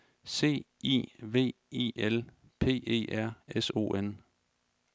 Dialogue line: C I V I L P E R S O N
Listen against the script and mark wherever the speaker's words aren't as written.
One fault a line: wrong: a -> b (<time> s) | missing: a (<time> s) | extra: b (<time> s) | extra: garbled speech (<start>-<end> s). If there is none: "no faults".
no faults